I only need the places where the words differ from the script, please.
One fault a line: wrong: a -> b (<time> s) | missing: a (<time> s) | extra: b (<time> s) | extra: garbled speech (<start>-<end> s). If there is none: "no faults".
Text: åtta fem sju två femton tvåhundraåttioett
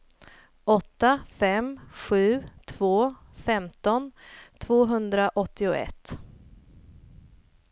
no faults